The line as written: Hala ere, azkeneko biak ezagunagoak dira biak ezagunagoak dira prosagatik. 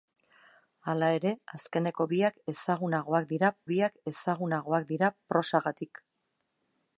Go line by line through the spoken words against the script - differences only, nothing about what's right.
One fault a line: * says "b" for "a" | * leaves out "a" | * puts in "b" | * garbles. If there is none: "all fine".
all fine